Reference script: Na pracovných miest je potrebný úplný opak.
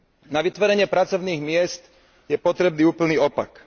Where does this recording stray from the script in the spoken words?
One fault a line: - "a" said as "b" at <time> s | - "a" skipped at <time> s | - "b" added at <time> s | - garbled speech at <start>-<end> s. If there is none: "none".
- "vytvorenie" added at 0.4 s